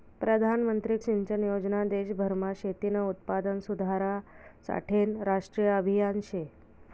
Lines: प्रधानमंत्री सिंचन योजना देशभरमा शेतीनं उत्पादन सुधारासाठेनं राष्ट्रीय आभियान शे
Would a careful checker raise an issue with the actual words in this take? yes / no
no